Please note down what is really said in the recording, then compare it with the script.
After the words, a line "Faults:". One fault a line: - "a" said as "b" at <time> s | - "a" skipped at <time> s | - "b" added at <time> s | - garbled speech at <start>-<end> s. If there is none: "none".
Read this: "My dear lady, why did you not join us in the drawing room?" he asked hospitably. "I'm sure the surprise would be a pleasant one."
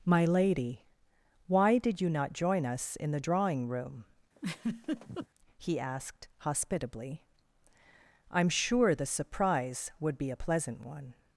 "My lady, why did you not join us in the drawing room?" he asked hospitably. "I'm sure the surprise would be a pleasant one."
Faults:
- "dear" skipped at 0.3 s